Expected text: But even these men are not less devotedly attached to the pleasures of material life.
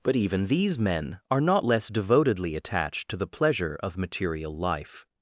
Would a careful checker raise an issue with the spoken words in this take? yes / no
yes